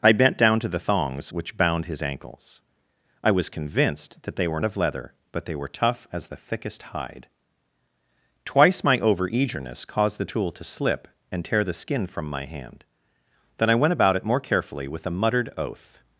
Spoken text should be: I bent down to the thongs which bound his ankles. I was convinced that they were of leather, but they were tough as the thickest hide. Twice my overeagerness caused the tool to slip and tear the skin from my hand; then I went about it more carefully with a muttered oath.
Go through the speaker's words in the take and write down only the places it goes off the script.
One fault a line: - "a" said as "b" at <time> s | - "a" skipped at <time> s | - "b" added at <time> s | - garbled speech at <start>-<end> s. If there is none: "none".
none